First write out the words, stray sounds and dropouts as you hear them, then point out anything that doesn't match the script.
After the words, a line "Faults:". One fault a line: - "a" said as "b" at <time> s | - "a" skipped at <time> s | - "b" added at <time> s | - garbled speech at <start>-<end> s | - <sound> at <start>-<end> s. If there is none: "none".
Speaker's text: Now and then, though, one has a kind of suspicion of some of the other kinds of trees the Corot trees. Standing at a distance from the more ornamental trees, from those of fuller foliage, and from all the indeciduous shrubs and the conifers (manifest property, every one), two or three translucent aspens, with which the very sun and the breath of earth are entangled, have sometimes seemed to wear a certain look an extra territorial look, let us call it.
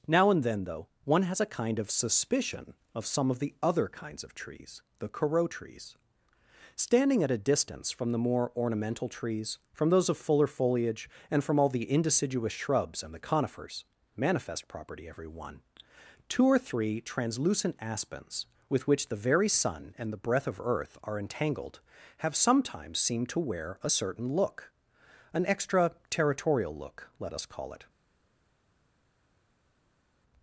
Now and then, though, one has a kind of suspicion of some of the other kinds of trees the Corot trees. Standing at a distance from the more ornamental trees, from those of fuller foliage, and from all the indeciduous shrubs and the conifers (manifest property, every one), two or three translucent aspens, with which the very sun and the breath of earth are entangled, have sometimes seemed to wear a certain look an extra territorial look, let us call it.
Faults:
none